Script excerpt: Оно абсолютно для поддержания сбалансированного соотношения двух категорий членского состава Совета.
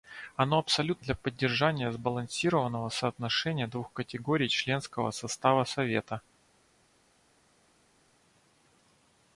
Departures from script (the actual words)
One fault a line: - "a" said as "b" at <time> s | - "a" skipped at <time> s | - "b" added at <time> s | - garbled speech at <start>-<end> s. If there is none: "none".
none